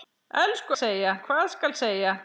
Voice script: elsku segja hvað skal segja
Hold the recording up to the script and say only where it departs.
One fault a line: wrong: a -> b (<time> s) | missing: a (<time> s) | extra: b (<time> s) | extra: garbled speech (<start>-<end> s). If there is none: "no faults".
no faults